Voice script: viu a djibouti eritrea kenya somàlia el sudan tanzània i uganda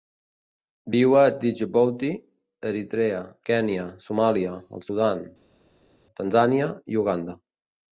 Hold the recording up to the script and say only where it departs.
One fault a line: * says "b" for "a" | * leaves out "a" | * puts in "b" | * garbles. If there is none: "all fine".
all fine